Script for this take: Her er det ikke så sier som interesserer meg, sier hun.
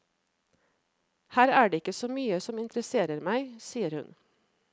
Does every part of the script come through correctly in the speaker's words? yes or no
no